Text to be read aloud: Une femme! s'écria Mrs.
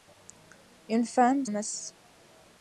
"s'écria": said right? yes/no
no